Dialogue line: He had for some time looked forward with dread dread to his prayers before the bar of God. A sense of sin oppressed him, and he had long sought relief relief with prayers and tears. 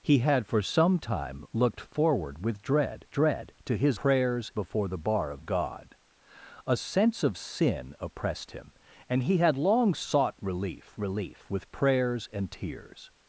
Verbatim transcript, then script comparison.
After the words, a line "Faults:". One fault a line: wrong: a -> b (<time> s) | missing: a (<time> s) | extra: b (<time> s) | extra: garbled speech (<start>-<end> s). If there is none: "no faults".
He had for some time looked forward with dread dread to his prayers before the bar of God. A sense of sin oppressed him, and he had long sought relief relief with prayers and tears.
Faults:
no faults